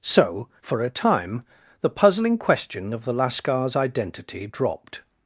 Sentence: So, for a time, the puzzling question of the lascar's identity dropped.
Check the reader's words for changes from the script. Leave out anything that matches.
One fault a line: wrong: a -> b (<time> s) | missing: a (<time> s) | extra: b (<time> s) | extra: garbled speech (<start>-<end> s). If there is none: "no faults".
no faults